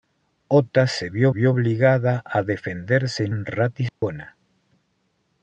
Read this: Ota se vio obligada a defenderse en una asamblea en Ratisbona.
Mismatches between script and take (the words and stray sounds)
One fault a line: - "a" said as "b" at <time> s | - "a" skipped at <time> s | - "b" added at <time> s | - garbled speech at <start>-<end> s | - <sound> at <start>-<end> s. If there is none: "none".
- "vio" added at 1.3 s
- "una asamblea" skipped at 3.3 s
- dropout at 3.9-4.0 s